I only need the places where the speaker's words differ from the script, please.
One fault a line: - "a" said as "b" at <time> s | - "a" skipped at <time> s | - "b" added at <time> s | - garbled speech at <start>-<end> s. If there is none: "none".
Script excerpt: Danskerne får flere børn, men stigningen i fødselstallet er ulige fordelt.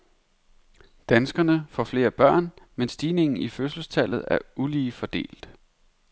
none